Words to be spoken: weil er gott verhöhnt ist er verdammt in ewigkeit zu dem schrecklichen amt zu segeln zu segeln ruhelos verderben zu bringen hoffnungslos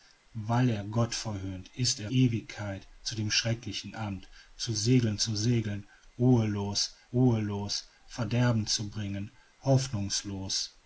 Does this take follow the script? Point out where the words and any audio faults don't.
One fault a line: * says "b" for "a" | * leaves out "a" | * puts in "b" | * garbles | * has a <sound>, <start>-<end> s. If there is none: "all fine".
* leaves out "verdammt in"
* puts in "ruhelos"